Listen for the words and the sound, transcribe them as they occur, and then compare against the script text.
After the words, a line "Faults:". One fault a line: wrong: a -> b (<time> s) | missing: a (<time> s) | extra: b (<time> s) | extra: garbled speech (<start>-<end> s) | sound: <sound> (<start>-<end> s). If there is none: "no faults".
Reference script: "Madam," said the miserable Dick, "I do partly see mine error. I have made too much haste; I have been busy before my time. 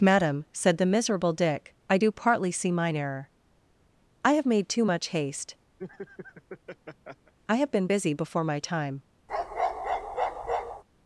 "Madam," said the miserable Dick, "I do partly see mine error. I have made too much haste; I have been busy before my time.
Faults:
sound: laugh (5.8-7.3 s)
sound: bark (9.3-10.8 s)